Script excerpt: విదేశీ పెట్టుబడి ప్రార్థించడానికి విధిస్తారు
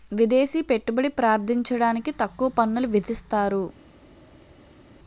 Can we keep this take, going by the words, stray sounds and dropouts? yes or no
no